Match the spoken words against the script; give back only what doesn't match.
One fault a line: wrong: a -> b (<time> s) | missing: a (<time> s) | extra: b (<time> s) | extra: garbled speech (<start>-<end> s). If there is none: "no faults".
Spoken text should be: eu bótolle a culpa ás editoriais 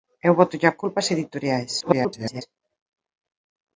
extra: garbled speech (1.8-2.4 s)